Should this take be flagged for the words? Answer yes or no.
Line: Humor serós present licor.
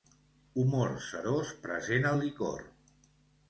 yes